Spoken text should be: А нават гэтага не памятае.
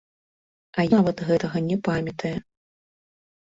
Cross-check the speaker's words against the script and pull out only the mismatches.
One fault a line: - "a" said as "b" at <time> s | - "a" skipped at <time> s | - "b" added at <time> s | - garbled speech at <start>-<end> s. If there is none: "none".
none